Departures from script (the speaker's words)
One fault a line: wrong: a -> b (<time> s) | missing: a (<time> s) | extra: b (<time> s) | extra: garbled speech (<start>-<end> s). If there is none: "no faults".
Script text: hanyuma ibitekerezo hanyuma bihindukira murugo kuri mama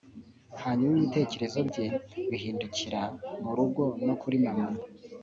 wrong: hanyuma -> bye (1.7 s)
extra: no (4.0 s)